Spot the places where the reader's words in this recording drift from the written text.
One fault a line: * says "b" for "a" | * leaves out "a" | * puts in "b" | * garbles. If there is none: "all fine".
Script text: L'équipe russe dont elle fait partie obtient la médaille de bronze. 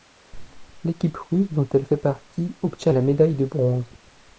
all fine